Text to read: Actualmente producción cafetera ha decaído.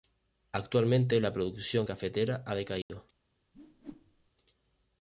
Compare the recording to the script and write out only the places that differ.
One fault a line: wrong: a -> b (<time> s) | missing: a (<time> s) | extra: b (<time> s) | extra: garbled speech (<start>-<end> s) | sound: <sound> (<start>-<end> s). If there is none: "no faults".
extra: la (1.2 s)
sound: dropout (2.8-2.9 s)
sound: whoosh (3.5-4.3 s)